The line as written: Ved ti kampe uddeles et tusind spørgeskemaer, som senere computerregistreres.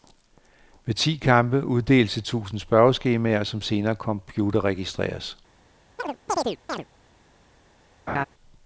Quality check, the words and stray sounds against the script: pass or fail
fail